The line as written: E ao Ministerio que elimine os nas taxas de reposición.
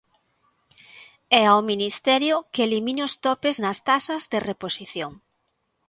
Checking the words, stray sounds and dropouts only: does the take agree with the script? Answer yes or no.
no